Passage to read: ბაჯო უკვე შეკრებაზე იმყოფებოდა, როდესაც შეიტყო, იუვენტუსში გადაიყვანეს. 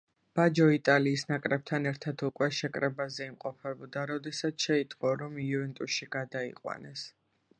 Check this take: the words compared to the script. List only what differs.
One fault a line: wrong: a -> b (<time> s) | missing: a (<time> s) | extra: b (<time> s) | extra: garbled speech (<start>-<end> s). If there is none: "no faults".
extra: იტალიის ნაკრებთან ერთად (0.8 s)
extra: რომ (5.2 s)